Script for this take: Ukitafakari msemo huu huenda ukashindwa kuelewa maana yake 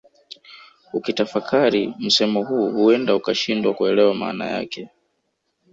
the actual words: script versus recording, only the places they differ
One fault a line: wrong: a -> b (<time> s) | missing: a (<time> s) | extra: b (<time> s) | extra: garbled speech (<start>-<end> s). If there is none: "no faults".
no faults